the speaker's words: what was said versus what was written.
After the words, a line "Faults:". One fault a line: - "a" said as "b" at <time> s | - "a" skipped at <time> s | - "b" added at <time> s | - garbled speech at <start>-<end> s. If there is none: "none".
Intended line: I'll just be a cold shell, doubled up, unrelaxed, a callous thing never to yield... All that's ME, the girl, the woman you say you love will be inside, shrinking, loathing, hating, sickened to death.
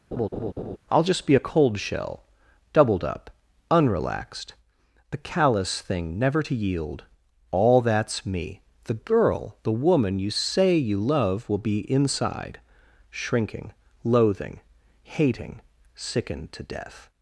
I'll just be a cold shell, doubled up, unrelaxed, the callous thing never to yield... All that's ME, the girl, the woman you say you love will be inside, shrinking, loathing, hating, sickened to death.
Faults:
- "a" said as "the" at 5.1 s